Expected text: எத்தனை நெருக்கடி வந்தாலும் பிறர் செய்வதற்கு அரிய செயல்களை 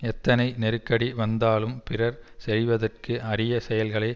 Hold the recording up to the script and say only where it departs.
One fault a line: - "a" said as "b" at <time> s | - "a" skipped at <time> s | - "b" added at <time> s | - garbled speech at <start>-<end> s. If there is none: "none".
none